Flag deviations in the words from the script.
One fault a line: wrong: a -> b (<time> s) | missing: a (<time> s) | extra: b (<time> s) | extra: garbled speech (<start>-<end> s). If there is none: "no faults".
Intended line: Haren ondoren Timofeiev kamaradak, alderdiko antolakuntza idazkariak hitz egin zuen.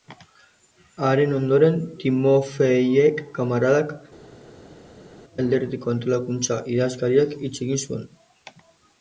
no faults